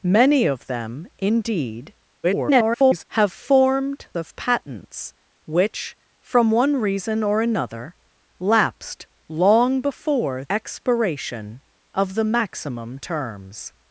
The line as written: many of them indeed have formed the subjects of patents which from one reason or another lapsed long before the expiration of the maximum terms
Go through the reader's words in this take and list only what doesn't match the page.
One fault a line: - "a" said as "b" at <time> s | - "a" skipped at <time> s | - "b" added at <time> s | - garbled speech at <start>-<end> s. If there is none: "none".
- garbled speech at 2.2-3.0 s
- "the subjects" skipped at 4.1 s
- "the" skipped at 10.4 s